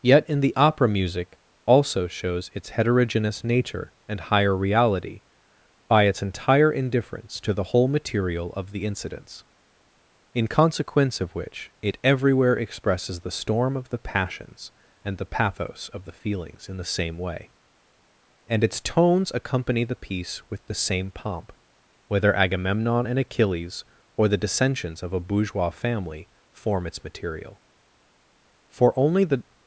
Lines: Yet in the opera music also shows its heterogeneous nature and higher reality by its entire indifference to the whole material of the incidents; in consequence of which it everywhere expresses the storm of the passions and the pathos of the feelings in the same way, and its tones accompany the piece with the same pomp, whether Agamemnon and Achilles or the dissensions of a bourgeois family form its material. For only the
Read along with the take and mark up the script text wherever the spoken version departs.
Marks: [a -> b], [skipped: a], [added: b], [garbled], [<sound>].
Yet in the opera music also shows its heterogeneous nature and higher reality by its entire indifference to the whole material of the incidents; in consequence of which it everywhere expresses the storm of the passions and the pathos of the feelings in the same way, and its tones accompany the piece with the same pomp, whether Agamemnon and Achilles or the dissensions of a bourgeois family form its material. For only the